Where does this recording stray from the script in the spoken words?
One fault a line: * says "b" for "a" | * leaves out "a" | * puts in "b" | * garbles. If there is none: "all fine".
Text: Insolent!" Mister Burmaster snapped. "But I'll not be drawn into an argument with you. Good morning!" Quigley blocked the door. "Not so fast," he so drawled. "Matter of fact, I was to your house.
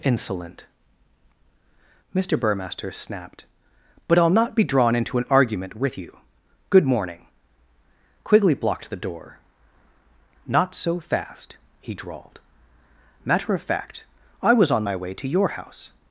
* leaves out "so"
* puts in "on my way"